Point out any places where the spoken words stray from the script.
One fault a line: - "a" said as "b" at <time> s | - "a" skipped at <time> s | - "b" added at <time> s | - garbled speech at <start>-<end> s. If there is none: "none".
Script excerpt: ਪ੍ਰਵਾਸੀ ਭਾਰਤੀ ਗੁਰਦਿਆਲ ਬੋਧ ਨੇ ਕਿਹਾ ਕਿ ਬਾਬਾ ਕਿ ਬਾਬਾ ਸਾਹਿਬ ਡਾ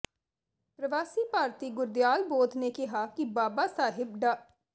- "ਕਿ ਬਾਬਾ" skipped at 3.7 s